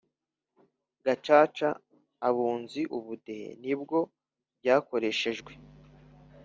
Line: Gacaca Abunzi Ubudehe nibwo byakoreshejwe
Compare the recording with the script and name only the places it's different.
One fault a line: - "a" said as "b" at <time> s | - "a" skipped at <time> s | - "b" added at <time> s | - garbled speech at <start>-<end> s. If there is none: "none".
none